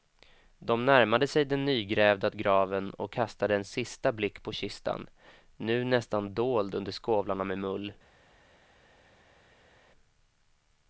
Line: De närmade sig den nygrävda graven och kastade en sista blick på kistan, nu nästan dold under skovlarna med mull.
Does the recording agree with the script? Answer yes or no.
yes